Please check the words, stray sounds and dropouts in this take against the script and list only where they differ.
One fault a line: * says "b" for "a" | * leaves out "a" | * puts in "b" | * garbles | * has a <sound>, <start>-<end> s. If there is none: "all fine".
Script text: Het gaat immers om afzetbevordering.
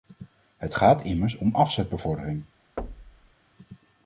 * has a thud, 2.8-3.3 s